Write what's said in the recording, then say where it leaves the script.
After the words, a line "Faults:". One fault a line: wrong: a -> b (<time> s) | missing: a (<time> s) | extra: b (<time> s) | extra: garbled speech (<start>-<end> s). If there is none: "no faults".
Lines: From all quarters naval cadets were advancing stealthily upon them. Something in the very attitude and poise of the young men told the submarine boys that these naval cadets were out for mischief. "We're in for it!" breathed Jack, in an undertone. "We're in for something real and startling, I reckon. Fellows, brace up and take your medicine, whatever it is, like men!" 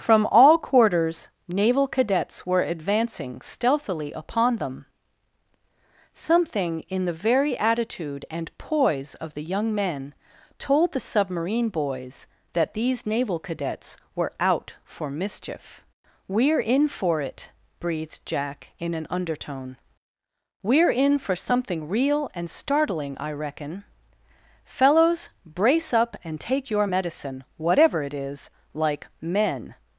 From all quarters naval cadets were advancing stealthily upon them. Something in the very attitude and poise of the young men told the submarine boys that these naval cadets were out for mischief. "We're in for it!" breathed Jack, in an undertone. "We're in for something real and startling, I reckon. Fellows, brace up and take your medicine, whatever it is, like men!"
Faults:
no faults